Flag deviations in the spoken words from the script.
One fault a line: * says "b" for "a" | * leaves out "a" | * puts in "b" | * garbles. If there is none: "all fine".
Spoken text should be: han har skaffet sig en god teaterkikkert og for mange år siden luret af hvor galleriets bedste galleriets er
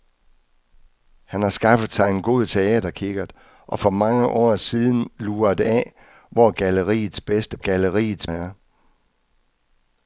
all fine